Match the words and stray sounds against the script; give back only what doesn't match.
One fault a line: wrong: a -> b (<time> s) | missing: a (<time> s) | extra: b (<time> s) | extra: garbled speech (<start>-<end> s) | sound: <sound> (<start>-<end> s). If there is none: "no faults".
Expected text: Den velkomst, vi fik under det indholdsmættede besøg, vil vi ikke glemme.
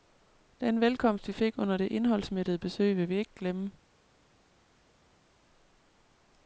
no faults